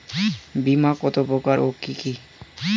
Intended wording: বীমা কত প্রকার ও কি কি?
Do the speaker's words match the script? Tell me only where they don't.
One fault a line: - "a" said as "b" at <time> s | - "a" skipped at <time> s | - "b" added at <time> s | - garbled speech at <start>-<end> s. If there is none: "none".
none